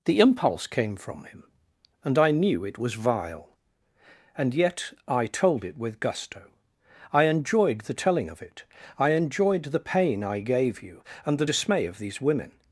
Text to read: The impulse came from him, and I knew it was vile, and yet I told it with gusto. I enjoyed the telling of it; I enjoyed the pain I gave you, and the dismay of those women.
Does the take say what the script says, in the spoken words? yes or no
no